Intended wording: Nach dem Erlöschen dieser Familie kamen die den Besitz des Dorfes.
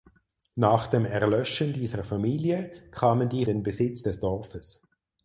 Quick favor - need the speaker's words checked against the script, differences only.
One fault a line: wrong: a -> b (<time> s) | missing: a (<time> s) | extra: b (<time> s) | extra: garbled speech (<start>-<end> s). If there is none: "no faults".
no faults